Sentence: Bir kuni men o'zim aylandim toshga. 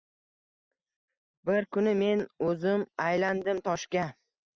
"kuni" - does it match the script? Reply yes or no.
yes